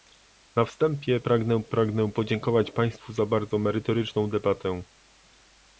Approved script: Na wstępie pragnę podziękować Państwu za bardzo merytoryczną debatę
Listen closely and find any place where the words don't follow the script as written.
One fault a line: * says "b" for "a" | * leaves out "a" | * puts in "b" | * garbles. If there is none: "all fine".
* puts in "pragnę"